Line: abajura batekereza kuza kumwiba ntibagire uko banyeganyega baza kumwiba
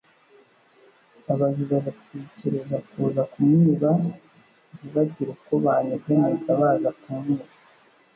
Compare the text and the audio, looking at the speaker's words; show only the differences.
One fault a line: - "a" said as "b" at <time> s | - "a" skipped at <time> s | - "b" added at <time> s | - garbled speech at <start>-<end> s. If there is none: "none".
none